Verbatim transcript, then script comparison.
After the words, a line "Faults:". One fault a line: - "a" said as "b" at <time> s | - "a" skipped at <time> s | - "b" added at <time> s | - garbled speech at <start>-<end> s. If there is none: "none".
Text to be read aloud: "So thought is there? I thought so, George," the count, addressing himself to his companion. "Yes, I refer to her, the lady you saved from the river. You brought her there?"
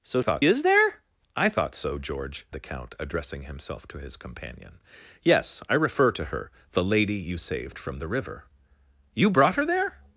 "So thought is there? I thought so, George," the count, addressing himself to his companion. "Yes, I refer to her, the lady you saved from the river. You brought her there?"
Faults:
none